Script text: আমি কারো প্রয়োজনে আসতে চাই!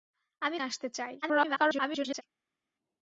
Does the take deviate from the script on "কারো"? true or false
true